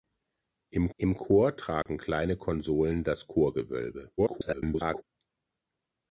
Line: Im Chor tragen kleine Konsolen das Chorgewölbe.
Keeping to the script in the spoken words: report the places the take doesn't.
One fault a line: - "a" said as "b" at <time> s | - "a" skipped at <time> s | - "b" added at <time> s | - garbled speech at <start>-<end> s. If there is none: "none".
- "im" added at 1.0 s
- garbled speech at 4.2-5.0 s